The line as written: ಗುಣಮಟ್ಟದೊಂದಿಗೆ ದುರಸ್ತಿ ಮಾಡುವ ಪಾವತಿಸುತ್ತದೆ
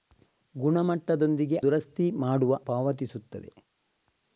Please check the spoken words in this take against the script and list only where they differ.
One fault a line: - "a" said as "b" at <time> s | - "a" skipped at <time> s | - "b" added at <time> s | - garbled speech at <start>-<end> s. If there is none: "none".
none